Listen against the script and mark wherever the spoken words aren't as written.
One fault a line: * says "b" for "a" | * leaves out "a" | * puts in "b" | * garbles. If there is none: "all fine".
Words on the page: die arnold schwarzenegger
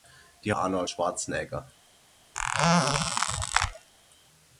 all fine